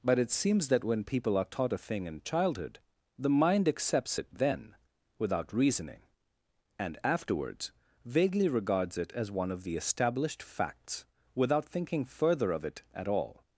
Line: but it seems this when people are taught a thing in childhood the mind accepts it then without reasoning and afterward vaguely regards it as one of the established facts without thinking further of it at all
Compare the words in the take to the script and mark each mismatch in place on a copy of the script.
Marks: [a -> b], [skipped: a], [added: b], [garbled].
but it seems [this -> that] when people are taught a thing in childhood the mind accepts it then without reasoning and [afterward -> afterwards] vaguely regards it as one of the established facts without thinking further of it at all